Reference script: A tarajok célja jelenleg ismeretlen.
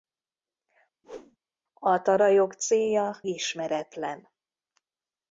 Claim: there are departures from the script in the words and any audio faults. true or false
true